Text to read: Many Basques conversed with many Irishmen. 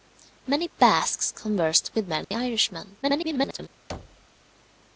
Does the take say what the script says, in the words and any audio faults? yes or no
no